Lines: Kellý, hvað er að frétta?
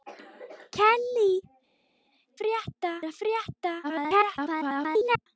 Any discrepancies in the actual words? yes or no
yes